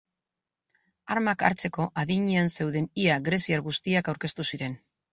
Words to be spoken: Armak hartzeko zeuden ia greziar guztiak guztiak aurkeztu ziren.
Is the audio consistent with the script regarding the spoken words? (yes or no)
no